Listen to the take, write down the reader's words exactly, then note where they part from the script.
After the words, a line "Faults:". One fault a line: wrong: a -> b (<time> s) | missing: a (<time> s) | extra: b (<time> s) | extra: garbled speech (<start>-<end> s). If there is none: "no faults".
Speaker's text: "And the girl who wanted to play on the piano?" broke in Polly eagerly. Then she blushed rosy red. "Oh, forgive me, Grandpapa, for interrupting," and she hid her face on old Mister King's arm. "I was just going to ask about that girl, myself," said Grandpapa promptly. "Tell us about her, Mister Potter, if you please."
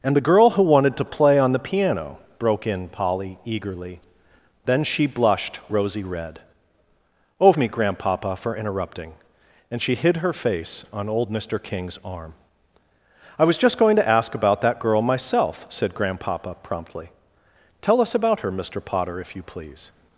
"And the girl who wanted to play on the piano?" broke in Polly eagerly. Then she blushed rosy red. "Oh, me, Grandpapa, for interrupting," and she hid her face on old Mister King's arm. "I was just going to ask about that girl, myself," said Grandpapa promptly. "Tell us about her, Mister Potter, if you please."
Faults:
missing: forgive (7.5 s)